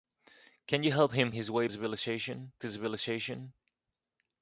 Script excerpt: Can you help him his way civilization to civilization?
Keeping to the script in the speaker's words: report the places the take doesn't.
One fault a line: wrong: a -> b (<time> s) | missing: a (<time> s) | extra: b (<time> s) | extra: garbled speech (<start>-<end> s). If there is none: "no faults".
no faults